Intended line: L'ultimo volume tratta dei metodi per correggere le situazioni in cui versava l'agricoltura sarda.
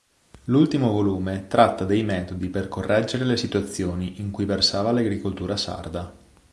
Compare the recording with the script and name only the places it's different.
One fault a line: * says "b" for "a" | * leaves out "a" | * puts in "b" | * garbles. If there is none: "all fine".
all fine